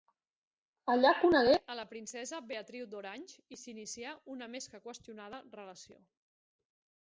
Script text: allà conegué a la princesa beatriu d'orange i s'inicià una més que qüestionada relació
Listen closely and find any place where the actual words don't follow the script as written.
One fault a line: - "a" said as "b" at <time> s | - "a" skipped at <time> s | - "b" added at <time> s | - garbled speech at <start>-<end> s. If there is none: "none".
none